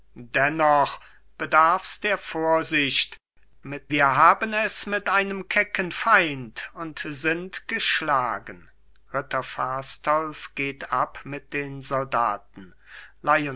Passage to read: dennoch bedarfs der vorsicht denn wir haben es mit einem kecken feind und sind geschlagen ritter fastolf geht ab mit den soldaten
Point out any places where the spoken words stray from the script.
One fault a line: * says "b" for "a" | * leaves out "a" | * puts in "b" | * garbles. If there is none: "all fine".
* says "mit" for "denn"